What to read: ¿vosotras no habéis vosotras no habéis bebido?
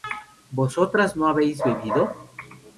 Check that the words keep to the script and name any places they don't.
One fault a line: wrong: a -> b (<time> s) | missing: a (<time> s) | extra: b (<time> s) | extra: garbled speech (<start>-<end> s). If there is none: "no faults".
missing: vosotras no habéis (1.6 s)